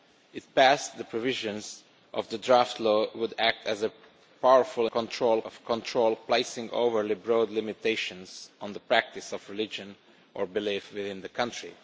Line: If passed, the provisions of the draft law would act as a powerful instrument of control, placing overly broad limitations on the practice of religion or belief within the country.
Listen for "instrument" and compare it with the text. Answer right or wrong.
wrong